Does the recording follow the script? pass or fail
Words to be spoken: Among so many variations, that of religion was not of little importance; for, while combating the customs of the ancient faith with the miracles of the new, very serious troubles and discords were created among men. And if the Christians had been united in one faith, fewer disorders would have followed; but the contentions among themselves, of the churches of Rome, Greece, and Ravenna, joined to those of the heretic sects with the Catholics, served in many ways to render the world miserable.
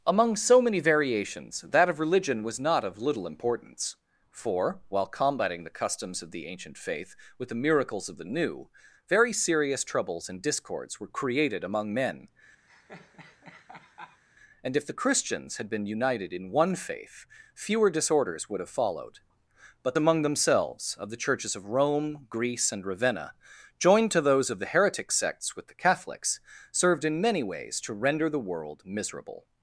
fail